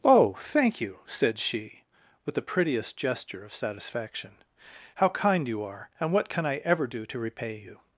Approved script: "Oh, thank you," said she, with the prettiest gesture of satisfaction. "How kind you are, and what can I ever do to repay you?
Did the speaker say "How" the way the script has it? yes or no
yes